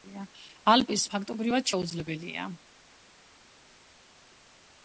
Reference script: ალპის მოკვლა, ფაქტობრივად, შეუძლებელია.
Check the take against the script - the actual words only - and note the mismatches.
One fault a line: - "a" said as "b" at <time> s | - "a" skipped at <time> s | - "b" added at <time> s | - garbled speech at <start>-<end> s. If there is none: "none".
- "მოკვლა" skipped at 1.1 s